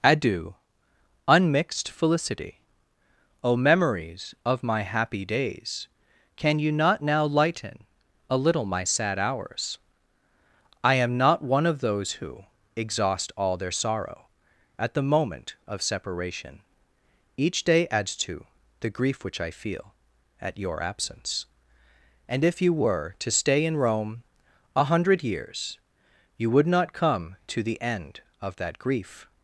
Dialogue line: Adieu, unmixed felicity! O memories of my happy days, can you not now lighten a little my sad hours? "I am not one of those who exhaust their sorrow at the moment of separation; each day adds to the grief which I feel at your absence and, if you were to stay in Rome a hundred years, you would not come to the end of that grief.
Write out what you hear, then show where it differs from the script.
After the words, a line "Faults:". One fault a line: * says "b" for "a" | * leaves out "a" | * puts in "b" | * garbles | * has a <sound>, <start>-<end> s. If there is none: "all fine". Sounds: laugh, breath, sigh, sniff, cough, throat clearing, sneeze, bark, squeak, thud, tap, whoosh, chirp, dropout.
Adieu, unmixed felicity! O memories of my happy days, can you not now lighten a little my sad hours? "I am not one of those who exhaust all their sorrow at the moment of separation; each day adds to the grief which I feel at your absence and, if you were to stay in Rome a hundred years, you would not come to the end of that grief.
Faults:
* puts in "all"